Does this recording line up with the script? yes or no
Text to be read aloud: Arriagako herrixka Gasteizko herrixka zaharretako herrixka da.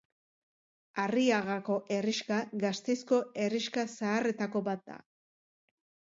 no